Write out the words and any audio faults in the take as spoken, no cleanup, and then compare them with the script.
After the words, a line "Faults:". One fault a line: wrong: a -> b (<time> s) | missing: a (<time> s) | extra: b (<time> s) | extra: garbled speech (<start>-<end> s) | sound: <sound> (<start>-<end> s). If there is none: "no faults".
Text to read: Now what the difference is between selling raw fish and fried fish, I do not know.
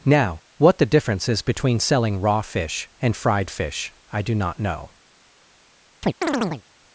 Now what the difference is between selling raw fish and fried fish, I do not know.
Faults:
sound: chirp (6.0-6.6 s)